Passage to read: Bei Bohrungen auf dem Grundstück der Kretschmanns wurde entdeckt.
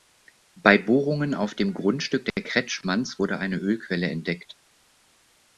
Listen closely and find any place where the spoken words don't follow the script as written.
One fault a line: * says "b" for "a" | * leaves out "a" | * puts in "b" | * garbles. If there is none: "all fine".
* puts in "eine Ölquelle"